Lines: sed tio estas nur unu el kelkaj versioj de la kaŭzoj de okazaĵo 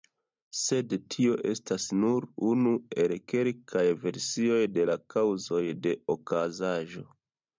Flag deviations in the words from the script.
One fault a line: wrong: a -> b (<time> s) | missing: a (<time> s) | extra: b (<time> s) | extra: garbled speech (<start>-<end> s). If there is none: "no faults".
no faults